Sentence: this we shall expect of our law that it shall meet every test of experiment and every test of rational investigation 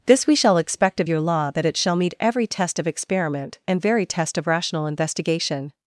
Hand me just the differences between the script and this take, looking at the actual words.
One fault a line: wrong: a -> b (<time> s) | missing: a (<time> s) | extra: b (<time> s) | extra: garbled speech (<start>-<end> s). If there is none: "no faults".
wrong: our -> your (1.1 s)
wrong: every -> very (3.8 s)